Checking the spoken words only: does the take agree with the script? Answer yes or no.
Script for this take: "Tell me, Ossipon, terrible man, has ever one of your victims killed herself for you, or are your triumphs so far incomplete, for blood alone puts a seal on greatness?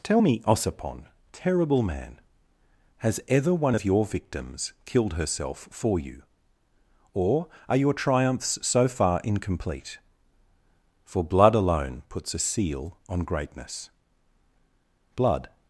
no